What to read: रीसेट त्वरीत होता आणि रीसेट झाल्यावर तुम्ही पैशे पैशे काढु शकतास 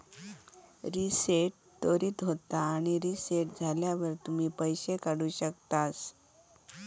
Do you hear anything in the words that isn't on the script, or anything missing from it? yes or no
yes